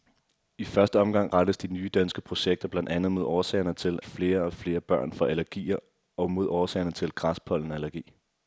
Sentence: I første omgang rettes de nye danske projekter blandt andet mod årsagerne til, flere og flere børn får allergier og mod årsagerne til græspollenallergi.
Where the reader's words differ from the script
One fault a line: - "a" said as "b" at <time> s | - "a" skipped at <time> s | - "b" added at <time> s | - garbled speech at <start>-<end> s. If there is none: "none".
none